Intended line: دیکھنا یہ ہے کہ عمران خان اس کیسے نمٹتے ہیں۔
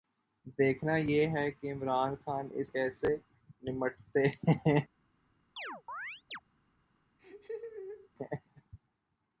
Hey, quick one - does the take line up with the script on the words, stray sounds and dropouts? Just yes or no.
no